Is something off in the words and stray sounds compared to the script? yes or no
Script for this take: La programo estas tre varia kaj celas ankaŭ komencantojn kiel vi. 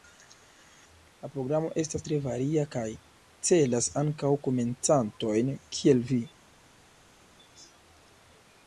no